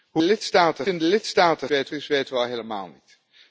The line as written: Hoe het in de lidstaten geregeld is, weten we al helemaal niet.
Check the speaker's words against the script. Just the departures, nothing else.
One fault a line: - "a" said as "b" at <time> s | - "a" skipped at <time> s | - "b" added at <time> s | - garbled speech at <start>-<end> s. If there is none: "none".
- "het" said as "lidstaten" at 0.2 s
- "geregeld" said as "weten" at 1.7 s